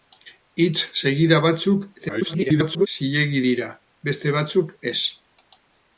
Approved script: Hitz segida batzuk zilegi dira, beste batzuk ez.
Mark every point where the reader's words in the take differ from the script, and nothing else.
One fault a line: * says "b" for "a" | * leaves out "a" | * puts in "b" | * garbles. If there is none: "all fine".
* garbles